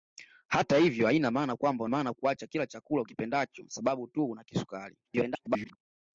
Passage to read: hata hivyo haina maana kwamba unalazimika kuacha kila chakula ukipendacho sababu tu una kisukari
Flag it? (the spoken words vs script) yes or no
yes